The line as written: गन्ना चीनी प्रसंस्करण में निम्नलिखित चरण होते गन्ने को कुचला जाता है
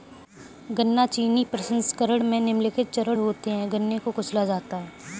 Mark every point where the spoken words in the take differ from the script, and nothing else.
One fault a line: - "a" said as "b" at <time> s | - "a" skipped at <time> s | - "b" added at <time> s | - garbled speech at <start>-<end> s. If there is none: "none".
- "है" added at 3.5 s